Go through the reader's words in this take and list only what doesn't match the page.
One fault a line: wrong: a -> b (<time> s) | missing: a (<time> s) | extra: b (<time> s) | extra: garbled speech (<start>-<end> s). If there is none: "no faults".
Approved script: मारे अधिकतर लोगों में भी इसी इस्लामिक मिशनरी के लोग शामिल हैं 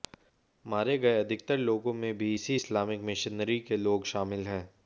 extra: गए (1.0 s)